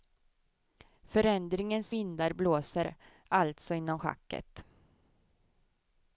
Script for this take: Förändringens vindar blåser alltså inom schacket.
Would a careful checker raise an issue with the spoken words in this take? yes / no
no